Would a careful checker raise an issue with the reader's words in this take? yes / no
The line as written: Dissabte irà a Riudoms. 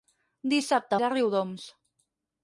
no